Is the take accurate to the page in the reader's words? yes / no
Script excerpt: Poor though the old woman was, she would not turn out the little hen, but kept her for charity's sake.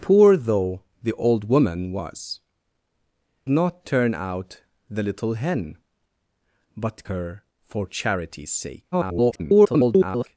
no